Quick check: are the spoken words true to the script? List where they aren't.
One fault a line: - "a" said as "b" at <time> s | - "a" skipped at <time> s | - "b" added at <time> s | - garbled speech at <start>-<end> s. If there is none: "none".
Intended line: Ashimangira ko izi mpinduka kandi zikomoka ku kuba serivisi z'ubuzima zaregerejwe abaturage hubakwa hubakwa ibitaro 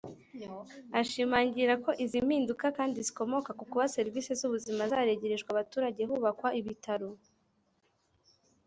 - "hubakwa" skipped at 6.5 s